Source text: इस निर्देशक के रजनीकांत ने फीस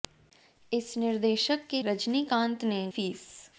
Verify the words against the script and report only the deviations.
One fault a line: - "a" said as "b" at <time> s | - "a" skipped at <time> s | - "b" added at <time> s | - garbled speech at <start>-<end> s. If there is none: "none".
none